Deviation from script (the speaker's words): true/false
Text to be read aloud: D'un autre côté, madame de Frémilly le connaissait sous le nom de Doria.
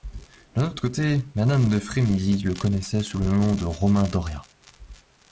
true